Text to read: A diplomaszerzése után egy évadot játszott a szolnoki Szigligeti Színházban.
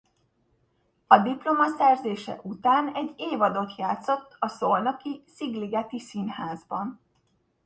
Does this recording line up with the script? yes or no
yes